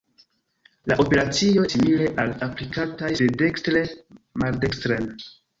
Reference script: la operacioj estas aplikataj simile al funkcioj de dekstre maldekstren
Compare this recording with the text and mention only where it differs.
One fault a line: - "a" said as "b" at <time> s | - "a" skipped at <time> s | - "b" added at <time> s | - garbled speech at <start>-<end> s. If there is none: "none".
- "estas aplikataj" skipped at 1.6 s
- "funkcioj" said as "aplikataj" at 2.5 s